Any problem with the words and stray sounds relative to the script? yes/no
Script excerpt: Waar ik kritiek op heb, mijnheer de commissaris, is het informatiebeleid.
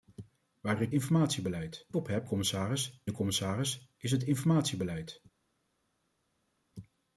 yes